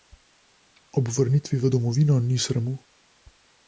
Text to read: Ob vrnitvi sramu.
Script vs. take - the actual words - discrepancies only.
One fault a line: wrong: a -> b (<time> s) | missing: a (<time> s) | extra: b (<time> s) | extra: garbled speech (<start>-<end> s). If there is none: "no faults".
extra: v domovino ni (1.6 s)